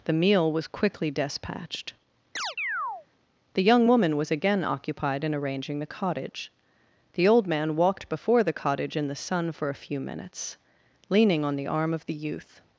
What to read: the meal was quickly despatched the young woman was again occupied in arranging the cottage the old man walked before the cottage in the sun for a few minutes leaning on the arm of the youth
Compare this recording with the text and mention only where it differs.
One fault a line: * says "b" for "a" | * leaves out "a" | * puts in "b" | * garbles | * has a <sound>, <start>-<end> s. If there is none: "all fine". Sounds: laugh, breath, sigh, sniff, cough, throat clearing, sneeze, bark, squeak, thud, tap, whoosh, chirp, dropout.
* has a chirp, 2.4-3.1 s